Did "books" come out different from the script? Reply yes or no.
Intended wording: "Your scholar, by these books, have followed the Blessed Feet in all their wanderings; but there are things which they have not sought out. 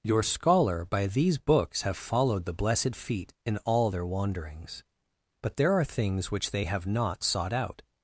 no